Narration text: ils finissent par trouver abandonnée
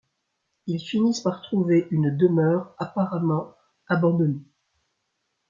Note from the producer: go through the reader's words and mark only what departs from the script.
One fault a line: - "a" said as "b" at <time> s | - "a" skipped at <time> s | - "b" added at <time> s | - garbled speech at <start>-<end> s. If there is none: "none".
- "une demeure apparemment" added at 1.9 s